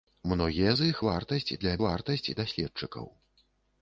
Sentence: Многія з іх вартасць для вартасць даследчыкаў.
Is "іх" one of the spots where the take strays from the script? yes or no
no